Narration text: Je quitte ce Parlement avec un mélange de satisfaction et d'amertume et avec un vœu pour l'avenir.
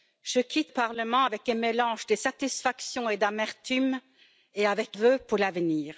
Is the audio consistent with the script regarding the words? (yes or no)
no